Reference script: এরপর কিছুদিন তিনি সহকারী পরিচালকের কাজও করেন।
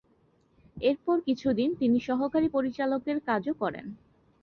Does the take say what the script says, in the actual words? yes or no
yes